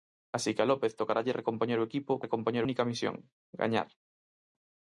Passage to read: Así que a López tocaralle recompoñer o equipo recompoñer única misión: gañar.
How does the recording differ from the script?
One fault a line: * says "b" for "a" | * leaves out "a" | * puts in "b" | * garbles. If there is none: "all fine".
all fine